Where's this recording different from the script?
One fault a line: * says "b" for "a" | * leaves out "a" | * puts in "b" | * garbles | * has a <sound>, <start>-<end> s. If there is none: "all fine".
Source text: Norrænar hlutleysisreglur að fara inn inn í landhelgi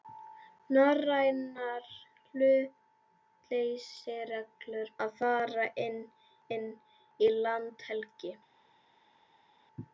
all fine